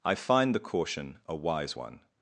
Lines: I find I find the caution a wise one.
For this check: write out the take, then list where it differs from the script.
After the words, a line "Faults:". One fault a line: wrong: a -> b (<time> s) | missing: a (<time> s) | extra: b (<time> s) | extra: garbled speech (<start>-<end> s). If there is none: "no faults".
I find the caution a wise one.
Faults:
missing: I find (0.6 s)